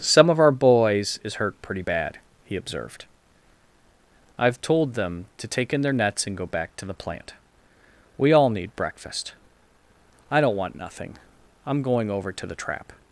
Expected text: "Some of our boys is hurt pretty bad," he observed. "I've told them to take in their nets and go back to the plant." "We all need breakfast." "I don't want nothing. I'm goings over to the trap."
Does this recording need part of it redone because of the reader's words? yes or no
yes